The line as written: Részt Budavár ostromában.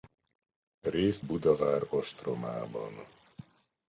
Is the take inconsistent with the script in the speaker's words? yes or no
no